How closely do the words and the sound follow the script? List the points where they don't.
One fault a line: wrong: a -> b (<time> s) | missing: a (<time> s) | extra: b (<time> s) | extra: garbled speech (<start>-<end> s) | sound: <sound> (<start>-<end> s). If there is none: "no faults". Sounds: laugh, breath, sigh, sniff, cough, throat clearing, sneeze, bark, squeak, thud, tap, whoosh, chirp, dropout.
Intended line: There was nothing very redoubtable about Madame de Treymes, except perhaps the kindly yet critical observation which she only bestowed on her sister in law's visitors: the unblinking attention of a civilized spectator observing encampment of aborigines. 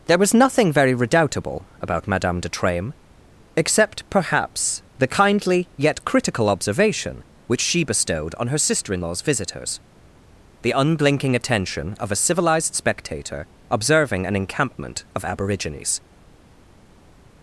missing: only (7.8 s)
extra: an (14.2 s)